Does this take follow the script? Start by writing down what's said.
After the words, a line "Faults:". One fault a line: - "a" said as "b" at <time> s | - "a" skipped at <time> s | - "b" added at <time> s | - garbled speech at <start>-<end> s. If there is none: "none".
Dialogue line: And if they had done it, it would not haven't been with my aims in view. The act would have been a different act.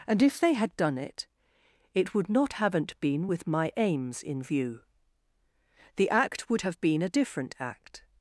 And if they had done it, it would not haven't been with my aims in view. The act would have been a different act.
Faults:
none